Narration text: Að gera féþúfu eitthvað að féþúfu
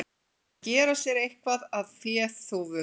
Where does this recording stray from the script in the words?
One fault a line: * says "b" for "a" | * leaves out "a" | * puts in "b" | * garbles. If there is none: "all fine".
* says "sér" for "féþúfu"